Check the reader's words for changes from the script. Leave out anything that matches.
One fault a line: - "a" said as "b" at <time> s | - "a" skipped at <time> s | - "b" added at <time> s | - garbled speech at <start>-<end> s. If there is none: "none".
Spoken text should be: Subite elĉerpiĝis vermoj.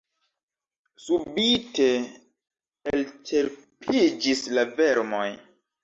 - "la" added at 4.6 s